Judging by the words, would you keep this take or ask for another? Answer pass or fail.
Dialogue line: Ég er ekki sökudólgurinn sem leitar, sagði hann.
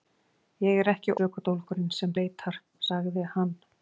pass